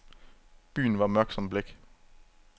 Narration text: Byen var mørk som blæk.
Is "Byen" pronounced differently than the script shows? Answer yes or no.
no